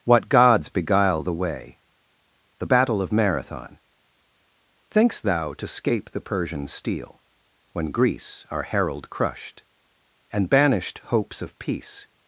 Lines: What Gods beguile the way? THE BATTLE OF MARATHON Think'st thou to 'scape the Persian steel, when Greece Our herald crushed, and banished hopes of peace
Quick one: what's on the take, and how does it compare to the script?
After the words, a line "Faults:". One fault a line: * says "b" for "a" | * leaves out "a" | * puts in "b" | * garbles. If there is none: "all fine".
What Gods beguile the way? THE BATTLE OF MARATHON Think'st thou to 'scape the Persian steel, when Greece Our herald crushed, and banished hopes of peace
Faults:
all fine